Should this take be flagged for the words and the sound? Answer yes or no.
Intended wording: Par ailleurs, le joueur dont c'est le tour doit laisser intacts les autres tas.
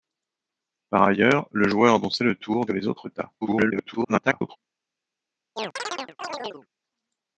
yes